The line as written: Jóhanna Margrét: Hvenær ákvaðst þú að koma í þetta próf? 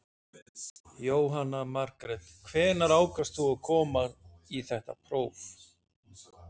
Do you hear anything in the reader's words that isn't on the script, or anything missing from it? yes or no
no